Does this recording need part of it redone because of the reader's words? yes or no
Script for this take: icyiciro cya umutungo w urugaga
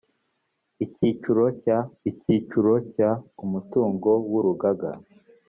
yes